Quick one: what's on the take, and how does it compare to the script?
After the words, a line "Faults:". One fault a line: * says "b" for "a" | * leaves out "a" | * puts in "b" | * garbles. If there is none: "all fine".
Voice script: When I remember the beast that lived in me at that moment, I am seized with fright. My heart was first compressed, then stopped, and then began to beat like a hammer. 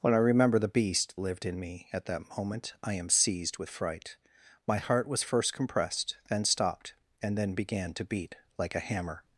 When I remember the beast lived in me at that moment, I am seized with fright. My heart was first compressed, then stopped, and then began to beat like a hammer.
Faults:
* leaves out "that"